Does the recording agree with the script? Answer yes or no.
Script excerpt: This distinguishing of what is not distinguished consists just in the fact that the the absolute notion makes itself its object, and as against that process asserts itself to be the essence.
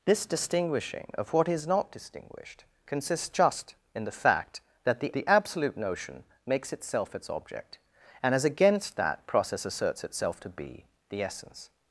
yes